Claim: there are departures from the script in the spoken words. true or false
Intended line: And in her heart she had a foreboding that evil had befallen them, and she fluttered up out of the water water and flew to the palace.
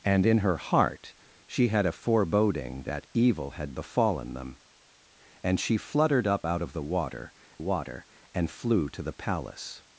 false